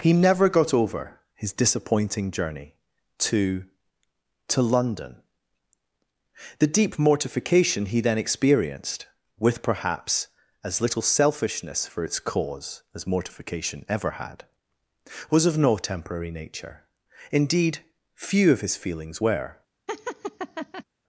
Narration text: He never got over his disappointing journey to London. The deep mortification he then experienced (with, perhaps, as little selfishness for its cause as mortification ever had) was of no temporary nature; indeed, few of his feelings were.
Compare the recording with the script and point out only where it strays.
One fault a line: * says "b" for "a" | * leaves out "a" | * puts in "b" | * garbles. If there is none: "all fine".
* puts in "to"